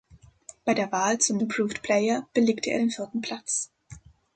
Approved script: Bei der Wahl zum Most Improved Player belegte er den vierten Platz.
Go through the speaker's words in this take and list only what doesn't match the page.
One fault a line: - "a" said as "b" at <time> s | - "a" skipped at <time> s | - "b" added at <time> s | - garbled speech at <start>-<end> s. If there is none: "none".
- "Most" skipped at 1.4 s